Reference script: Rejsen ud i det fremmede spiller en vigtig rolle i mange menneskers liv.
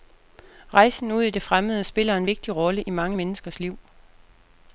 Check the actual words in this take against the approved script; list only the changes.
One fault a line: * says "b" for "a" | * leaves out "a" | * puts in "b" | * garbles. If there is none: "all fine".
all fine